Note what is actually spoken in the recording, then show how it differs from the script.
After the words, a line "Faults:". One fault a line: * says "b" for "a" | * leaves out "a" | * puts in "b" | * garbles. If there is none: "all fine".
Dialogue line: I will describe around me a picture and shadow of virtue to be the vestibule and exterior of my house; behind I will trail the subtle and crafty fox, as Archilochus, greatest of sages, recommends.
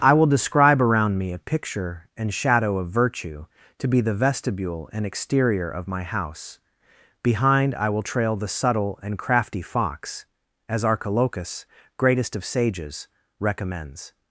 I will describe around me a picture and shadow of virtue to be the vestibule and exterior of my house; behind I will trail the subtle and crafty fox, as Archilochus, greatest of sages, recommends.
Faults:
all fine